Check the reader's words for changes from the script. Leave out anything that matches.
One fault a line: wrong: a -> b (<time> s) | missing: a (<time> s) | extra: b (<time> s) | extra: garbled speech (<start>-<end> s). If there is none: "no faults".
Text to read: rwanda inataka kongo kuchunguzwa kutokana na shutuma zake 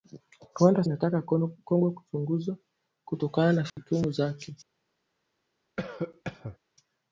no faults